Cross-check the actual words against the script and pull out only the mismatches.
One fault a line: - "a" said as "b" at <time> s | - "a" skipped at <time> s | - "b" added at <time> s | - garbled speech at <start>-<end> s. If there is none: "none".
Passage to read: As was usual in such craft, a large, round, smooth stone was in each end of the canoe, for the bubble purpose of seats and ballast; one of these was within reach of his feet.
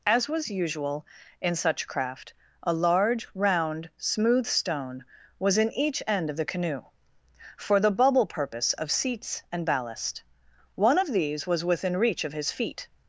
none